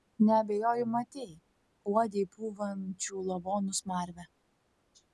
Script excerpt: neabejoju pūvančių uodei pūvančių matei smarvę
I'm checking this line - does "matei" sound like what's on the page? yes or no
no